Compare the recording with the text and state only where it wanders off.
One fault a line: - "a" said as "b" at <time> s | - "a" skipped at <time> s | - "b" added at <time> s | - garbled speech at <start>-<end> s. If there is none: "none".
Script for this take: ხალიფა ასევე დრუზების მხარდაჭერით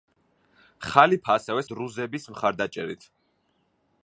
none